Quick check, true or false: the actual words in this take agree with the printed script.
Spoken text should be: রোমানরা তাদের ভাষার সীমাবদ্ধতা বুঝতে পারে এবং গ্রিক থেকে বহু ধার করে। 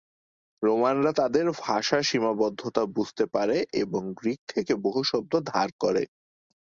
false